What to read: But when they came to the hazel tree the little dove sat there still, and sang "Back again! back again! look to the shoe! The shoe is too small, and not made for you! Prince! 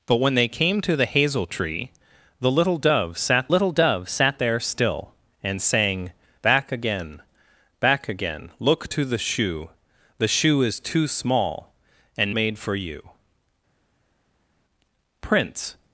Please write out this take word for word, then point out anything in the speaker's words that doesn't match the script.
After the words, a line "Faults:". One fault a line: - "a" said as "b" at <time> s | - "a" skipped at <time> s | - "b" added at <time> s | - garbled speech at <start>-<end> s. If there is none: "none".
But when they came to the hazel tree the little dove sat little dove sat there still, and sang "Back again! back again! look to the shoe! The shoe is too small, and made for you! Prince!
Faults:
- "little dove sat" added at 3.5 s
- "not" skipped at 12.4 s